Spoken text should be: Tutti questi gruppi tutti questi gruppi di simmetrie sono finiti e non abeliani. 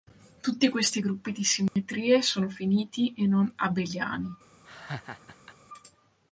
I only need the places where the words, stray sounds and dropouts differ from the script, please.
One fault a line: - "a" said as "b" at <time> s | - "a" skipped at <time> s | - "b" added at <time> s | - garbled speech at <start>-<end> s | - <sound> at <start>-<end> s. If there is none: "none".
- "tutti questi gruppi" skipped at 1.3 s
- dropout at 1.7-1.8 s
- laugh at 4.6-5.6 s